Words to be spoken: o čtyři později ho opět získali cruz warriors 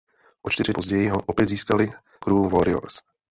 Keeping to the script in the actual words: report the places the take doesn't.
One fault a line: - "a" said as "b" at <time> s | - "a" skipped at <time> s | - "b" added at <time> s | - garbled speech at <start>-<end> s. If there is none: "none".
none